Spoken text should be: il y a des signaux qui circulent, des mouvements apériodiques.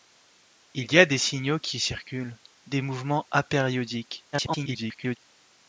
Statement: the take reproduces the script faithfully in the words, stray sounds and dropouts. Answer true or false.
false